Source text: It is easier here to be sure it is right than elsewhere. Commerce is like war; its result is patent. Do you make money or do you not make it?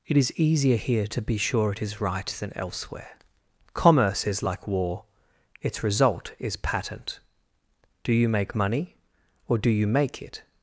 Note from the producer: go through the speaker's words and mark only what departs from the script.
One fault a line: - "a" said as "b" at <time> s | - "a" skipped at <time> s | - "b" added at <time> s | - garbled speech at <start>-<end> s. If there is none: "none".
- "not" skipped at 9.9 s